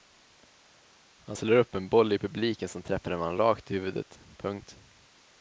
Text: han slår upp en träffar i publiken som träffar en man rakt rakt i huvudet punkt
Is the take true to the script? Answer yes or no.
no